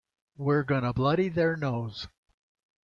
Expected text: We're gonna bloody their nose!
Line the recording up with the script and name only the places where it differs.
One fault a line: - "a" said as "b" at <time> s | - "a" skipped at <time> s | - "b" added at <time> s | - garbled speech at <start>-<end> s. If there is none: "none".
none